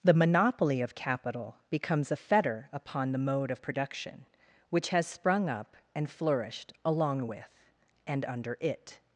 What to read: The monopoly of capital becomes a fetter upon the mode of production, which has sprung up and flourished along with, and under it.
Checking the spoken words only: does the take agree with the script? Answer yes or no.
yes